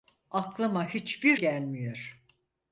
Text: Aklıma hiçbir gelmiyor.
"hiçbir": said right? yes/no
yes